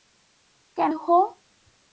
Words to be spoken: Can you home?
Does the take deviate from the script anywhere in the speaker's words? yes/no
no